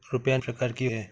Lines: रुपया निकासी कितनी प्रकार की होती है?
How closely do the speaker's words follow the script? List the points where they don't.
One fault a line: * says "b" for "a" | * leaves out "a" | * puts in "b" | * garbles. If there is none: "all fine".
* leaves out "निकासी कितनी"
* leaves out "होती"